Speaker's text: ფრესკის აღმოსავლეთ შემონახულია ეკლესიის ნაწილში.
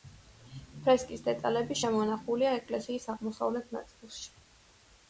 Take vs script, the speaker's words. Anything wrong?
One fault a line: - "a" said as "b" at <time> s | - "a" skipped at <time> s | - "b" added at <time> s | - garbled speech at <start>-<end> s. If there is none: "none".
- "აღმოსავლეთ" said as "დეტალები" at 1.3 s
- "აღმოსავლეთ" added at 3.2 s